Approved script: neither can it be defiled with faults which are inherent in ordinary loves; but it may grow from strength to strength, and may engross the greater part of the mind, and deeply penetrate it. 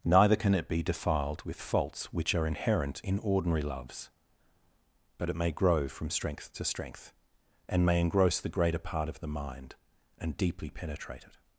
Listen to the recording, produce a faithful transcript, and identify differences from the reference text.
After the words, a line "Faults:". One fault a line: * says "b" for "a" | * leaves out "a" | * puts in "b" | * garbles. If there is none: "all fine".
neither can it be defiled with faults which are inherent in ordinary loves; but it may grow from strength to strength, and may engross the greater part of the mind, and deeply penetrate it.
Faults:
all fine